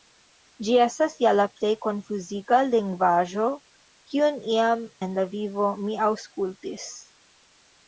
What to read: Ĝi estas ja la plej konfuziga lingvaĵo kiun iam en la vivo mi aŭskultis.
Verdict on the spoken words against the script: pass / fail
pass